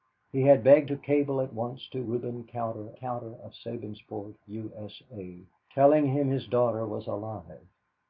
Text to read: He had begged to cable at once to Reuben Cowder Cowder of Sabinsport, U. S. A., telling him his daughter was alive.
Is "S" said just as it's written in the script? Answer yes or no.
yes